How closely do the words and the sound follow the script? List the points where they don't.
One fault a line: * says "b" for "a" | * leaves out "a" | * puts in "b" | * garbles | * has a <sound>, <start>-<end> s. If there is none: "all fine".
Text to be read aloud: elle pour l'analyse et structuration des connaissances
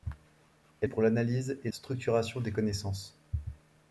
all fine